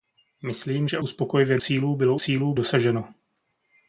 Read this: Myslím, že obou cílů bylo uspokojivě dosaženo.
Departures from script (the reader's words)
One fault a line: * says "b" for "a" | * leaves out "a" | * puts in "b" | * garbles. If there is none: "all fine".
* says "uspokojivě" for "obou"
* says "cílů" for "uspokojivě"